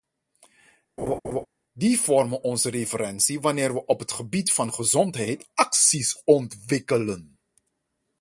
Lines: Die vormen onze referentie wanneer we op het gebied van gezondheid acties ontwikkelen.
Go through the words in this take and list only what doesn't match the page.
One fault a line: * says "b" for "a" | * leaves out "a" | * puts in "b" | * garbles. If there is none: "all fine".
all fine